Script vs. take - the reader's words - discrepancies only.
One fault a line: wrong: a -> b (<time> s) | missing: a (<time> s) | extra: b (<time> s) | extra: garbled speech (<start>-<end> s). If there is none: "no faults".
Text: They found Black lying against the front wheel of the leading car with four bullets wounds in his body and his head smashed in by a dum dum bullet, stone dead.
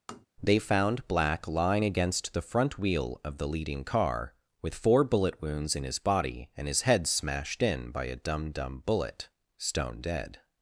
wrong: bullets -> bullet (5.0 s)